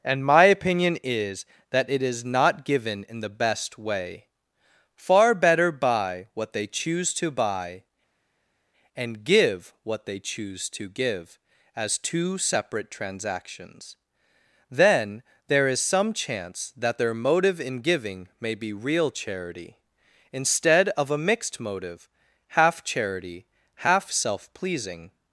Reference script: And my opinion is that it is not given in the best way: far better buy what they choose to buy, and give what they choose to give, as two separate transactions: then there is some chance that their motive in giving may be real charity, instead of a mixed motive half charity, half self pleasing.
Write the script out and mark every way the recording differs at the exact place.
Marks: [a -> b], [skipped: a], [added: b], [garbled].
And my opinion is that it is not given in the best way: far better buy what they choose to buy, and give what they choose to give, as two separate transactions: then there is some chance that their motive in giving may be real charity, instead of a mixed motive half charity, half self pleasing.